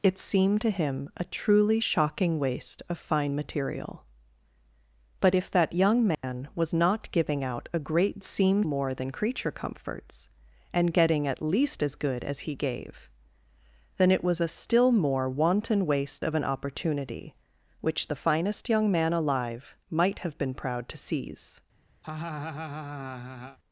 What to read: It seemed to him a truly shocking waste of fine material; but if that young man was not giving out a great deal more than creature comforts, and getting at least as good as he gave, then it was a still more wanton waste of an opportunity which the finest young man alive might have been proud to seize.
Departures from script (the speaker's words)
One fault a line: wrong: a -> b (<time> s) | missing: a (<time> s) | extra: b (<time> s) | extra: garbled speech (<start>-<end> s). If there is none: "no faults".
wrong: deal -> seemed (8.2 s)